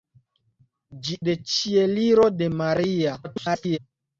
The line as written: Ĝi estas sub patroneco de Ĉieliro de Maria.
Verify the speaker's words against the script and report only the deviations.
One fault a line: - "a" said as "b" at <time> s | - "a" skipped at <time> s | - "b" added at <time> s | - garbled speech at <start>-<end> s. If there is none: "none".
- "estas sub patroneco" skipped at 1.2 s
- garbled speech at 3.2-3.8 s